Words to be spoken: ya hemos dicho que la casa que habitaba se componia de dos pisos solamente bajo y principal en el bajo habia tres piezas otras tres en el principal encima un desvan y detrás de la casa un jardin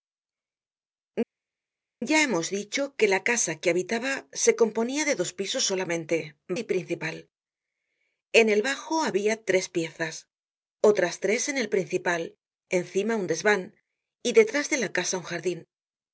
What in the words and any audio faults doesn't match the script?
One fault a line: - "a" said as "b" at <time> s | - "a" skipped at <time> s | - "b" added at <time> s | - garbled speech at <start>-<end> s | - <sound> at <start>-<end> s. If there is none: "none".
- "bajo" skipped at 6.2 s